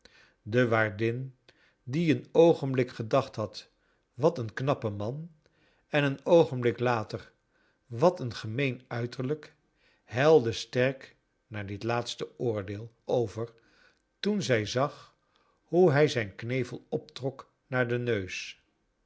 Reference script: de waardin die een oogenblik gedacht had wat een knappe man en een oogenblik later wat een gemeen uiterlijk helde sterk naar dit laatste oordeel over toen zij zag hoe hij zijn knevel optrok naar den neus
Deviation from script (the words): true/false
false